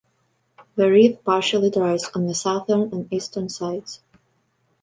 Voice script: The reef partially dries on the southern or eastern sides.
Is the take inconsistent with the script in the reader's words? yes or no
yes